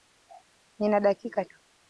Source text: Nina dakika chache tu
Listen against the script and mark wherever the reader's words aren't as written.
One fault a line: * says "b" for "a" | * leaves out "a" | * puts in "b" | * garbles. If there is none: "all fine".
* leaves out "chache"